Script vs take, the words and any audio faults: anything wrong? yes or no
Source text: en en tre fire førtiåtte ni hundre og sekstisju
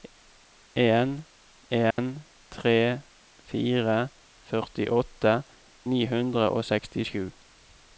yes